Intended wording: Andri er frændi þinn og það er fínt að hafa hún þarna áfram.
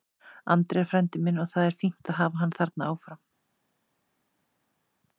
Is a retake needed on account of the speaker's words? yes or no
yes